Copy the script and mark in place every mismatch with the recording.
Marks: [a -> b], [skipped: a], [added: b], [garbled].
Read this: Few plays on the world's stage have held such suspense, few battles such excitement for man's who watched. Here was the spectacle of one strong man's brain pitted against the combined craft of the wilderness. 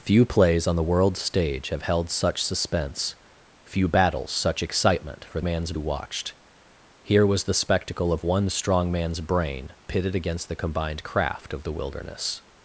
Few plays on the world's stage have held such suspense, few battles such excitement for man's who watched. Here was the spectacle of one strong man's brain pitted against the combined craft of the wilderness.